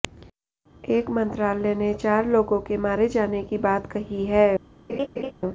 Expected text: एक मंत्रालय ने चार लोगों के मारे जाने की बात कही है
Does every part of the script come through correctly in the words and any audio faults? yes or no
no